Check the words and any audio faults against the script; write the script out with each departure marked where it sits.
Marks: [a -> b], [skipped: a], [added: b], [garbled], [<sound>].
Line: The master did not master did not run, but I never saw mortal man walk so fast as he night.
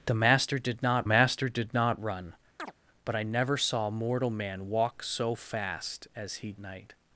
The master did not master did not run, [chirp] but I never saw mortal man walk so fast as he night.